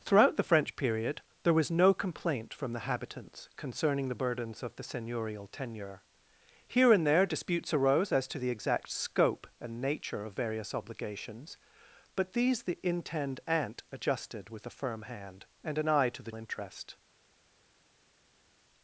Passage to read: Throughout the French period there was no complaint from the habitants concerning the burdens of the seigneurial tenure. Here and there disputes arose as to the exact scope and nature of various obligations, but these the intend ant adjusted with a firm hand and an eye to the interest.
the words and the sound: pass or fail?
pass